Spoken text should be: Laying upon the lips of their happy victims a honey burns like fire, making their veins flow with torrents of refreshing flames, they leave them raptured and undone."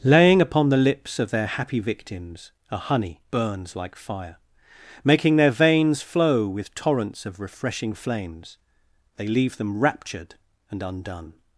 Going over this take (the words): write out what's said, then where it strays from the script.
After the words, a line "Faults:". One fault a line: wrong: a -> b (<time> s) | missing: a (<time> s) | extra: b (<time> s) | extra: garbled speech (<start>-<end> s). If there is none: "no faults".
Laying upon the lips of their happy victims a honey burns like fire, making their veins flow with torrents of refreshing flames, they leave them raptured and undone."
Faults:
no faults